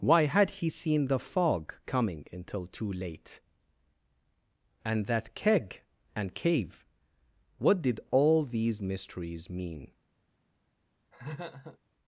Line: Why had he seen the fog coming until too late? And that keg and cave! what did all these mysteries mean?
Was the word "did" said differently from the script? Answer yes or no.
no